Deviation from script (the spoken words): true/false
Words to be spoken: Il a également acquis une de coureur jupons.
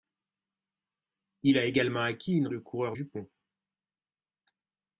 false